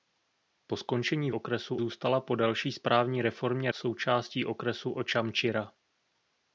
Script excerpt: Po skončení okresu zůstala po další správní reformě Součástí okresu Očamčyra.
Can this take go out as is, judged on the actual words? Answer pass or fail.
pass